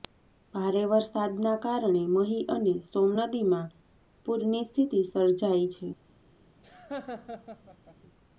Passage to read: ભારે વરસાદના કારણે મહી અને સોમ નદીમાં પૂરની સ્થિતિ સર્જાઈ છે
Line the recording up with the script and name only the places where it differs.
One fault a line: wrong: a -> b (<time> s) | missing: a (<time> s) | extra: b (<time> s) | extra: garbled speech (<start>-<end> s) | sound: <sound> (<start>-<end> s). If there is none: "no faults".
sound: laugh (6.6-8.0 s)